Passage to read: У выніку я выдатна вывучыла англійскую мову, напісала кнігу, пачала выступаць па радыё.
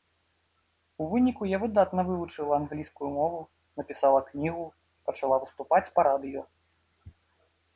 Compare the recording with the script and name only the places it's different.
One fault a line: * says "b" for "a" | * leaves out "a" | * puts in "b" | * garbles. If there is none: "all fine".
all fine